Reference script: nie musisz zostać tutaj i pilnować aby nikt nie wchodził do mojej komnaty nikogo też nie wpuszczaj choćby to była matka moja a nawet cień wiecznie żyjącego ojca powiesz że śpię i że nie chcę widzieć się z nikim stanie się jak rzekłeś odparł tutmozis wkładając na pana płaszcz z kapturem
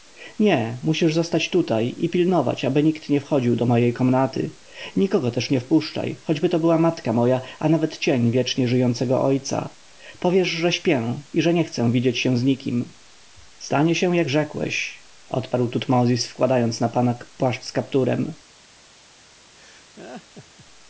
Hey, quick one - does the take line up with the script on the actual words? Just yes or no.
yes